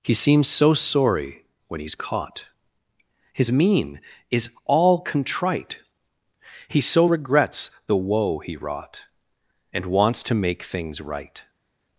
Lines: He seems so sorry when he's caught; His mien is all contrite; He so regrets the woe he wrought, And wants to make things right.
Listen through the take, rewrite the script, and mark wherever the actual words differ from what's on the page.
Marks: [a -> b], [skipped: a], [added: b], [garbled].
He seems so sorry when he's caught; His mien is all contrite; He so regrets the woe he wrought, And wants to make things right.